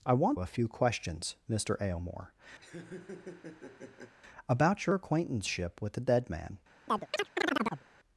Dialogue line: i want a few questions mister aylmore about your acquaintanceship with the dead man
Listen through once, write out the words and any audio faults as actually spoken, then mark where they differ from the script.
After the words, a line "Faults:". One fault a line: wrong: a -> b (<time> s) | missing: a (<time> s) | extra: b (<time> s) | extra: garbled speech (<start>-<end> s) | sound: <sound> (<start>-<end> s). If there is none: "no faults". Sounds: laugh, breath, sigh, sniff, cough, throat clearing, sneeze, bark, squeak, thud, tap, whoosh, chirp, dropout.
i want a few questions mister aylmore about your acquaintanceship with the dead man
Faults:
sound: laugh (2.6-4.1 s)
sound: chirp (6.9-7.8 s)